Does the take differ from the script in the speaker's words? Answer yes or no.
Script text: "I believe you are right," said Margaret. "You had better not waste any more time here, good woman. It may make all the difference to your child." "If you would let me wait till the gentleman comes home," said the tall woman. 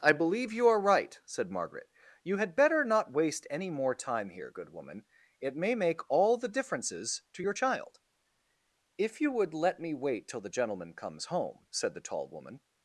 yes